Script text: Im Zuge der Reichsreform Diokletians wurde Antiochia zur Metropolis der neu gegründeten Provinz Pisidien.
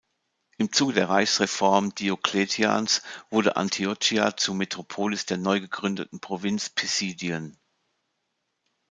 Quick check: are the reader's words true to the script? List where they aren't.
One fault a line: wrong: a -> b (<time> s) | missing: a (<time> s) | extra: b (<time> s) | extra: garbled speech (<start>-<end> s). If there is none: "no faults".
no faults